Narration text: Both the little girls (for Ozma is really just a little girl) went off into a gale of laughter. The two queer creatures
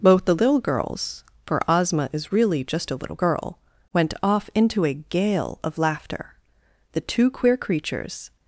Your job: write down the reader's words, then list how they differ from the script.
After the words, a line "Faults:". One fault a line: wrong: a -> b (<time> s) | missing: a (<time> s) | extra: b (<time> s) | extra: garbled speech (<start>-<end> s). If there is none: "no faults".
Both the little girls (for Ozma is really just a little girl) went off into a gale of laughter. The two queer creatures
Faults:
no faults